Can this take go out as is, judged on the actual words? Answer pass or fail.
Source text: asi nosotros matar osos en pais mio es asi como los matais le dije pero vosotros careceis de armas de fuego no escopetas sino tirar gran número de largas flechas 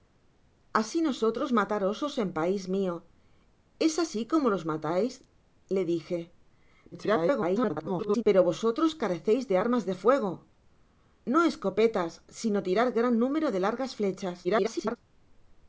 fail